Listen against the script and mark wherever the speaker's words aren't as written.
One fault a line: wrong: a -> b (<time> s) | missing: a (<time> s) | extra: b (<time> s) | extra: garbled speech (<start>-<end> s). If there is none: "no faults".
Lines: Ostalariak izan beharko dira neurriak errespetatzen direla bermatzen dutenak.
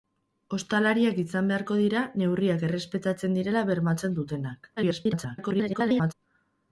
extra: garbled speech (4.8-6.1 s)